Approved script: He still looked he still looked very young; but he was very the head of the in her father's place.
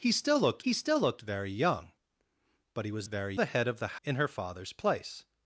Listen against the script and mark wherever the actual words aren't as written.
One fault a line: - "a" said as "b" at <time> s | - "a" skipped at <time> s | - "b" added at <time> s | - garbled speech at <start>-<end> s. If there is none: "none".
none